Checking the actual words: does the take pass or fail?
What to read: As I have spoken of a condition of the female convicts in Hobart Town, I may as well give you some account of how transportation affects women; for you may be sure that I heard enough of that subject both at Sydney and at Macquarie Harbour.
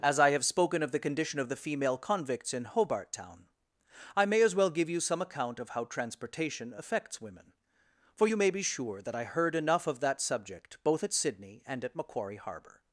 fail